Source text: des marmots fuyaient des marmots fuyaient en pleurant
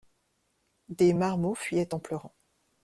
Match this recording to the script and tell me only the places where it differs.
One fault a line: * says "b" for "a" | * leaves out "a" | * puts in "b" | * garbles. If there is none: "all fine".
* leaves out "des marmots fuyaient"